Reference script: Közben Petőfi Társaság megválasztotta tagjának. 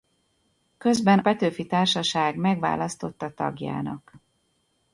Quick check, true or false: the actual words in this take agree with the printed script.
true